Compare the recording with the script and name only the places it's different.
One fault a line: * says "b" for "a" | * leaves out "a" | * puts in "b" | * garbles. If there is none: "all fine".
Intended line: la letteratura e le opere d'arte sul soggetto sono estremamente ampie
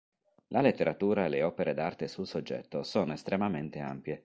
all fine